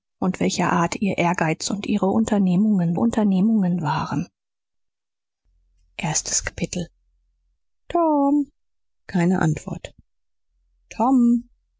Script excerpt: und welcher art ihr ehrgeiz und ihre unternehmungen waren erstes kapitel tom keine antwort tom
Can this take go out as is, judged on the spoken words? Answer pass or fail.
fail